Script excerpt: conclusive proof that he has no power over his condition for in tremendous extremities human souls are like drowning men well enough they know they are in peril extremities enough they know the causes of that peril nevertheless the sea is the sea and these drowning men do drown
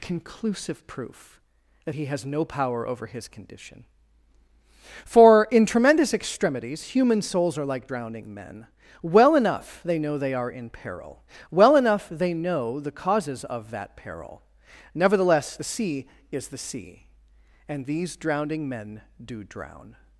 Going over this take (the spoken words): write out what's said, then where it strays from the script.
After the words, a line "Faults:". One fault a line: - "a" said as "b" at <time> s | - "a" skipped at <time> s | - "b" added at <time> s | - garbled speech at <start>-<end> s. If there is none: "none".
conclusive proof that he has no power over his condition for in tremendous extremities human souls are like drowning men well enough they know they are in peril well enough they know the causes of that peril nevertheless the sea is the sea and these drowning men do drown
Faults:
- "extremities" said as "well" at 11.5 s